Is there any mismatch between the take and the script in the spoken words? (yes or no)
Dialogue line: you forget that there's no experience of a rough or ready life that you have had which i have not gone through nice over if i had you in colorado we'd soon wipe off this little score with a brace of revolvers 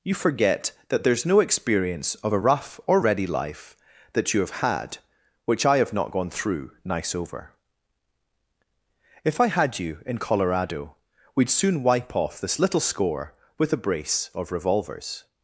no